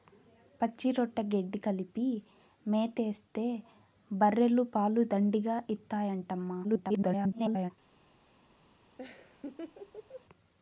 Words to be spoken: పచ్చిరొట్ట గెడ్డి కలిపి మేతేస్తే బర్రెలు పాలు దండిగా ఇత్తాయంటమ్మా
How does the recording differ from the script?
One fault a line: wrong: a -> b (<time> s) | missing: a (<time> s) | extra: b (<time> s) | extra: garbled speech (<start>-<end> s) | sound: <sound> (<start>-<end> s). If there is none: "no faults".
extra: garbled speech (6.6-7.7 s)
sound: laugh (9.0-10.2 s)